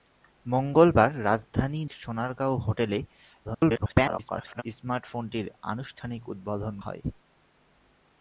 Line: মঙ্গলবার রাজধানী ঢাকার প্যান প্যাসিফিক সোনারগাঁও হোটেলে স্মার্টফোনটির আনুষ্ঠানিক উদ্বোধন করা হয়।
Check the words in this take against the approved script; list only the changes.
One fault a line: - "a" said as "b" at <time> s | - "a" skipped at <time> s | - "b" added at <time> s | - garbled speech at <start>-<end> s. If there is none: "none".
- "ঢাকার প্যান প্যাসিফিক" skipped at 1.8 s
- garbled speech at 3.4-4.6 s
- "করা" skipped at 6.8 s